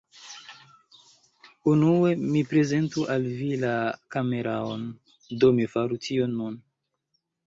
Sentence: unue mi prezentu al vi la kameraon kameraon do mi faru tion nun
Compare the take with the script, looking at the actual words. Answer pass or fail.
fail